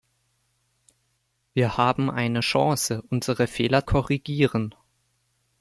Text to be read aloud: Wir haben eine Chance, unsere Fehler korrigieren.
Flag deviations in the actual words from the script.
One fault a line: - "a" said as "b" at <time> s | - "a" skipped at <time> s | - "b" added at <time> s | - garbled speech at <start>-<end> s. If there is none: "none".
none